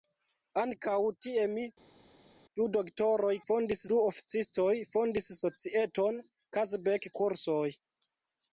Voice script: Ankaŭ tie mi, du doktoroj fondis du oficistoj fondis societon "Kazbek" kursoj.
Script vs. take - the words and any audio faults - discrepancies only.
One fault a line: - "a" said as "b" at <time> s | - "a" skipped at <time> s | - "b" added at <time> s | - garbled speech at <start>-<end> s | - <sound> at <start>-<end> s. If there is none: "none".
none